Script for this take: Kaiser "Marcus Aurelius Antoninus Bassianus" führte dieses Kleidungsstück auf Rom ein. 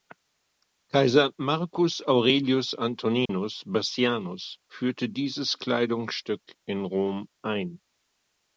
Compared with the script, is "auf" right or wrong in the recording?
wrong